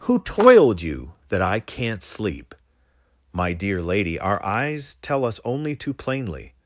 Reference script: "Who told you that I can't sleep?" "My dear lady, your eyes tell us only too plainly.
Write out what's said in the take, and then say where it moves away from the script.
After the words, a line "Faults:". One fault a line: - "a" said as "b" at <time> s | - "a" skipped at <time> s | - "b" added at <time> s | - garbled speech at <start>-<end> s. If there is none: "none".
"Who toiled you that I can't sleep?" "My dear lady, our eyes tell us only too plainly.
Faults:
- "told" said as "toiled" at 0.2 s
- "your" said as "our" at 4.2 s